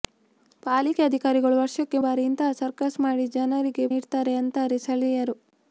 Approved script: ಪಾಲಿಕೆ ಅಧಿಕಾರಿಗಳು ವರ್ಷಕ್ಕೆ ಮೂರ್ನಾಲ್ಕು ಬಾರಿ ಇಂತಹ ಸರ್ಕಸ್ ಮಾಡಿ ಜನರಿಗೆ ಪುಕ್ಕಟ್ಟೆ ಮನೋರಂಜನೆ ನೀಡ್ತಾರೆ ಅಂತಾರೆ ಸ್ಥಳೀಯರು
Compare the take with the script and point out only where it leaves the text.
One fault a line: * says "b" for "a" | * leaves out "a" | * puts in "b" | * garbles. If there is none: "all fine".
* leaves out "ಮೂರ್ನಾಲ್ಕು"
* leaves out "ಪುಕ್ಕಟ್ಟೆ ಮನೋರಂಜನೆ"